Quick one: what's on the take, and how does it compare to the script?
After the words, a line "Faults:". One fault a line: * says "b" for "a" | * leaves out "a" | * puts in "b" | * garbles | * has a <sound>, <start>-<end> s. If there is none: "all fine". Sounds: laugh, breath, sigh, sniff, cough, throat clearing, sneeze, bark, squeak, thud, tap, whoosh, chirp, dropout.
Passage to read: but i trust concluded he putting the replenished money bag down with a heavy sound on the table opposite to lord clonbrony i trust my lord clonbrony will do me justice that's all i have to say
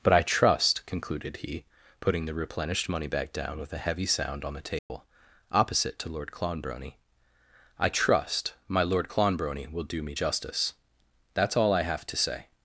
but i trust concluded he putting the replenished money back down with a heavy sound on the table opposite to lord clonbrony i trust my lord clonbrony will do me justice that's all i have to say
Faults:
* says "back" for "bag"
* has a dropout, 4.8-4.9 s